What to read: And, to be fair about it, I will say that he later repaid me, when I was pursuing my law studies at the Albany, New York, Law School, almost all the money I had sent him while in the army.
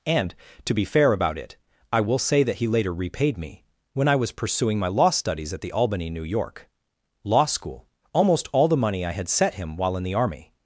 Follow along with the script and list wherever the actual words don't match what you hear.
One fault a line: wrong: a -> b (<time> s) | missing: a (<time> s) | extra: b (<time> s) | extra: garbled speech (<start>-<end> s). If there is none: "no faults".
wrong: sent -> set (9.3 s)